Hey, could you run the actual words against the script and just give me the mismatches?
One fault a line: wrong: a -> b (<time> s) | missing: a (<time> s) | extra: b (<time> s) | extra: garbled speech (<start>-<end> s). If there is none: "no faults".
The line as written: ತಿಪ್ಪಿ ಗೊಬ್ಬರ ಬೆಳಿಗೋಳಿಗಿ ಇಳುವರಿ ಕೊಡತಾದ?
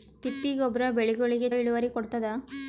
no faults